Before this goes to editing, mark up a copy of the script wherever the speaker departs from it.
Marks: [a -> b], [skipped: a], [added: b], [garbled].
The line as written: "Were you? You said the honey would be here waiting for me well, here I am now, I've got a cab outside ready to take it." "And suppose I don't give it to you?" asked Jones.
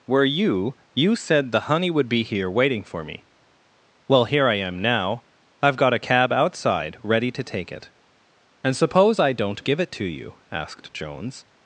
"Were you? You said the honey would be here waiting for me well, here I am now, I've got a cab outside ready to take it." "And suppose I don't give it to you?" asked Jones.